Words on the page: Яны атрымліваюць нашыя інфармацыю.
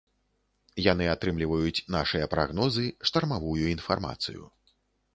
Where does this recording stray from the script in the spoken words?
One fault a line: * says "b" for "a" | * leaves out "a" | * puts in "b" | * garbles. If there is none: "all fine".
* puts in "прагнозы штармавую"